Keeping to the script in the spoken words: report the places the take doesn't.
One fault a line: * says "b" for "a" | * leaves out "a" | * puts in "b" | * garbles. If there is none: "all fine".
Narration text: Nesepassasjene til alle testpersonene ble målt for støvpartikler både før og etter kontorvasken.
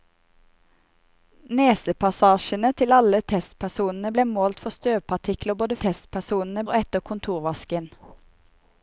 * says "testpersonene" for "før"